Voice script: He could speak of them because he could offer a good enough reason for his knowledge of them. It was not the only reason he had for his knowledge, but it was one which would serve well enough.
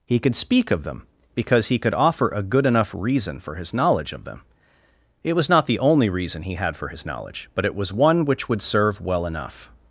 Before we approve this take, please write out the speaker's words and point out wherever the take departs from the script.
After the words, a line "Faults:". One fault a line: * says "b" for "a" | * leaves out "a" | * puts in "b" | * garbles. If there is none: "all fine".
He could speak of them because he could offer a good enough reason for his knowledge of them. It was not the only reason he had for his knowledge, but it was one which would serve well enough.
Faults:
all fine